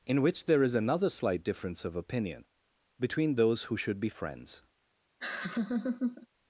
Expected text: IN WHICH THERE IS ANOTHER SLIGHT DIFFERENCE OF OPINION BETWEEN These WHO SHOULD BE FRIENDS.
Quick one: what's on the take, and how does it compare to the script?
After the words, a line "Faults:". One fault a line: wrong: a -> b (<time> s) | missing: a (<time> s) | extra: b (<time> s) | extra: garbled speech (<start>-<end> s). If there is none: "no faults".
IN WHICH THERE IS ANOTHER SLIGHT DIFFERENCE OF OPINION BETWEEN THOSE WHO SHOULD BE FRIENDS.
Faults:
wrong: These -> THOSE (3.3 s)